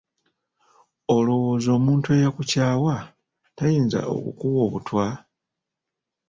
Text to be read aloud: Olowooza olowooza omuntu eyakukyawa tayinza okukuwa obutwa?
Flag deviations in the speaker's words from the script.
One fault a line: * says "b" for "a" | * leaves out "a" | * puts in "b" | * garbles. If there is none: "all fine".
* leaves out "olowooza"